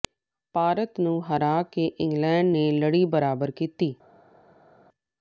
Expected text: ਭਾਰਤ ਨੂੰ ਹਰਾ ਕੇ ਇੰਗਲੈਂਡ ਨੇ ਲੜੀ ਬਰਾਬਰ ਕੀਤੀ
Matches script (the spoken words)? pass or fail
pass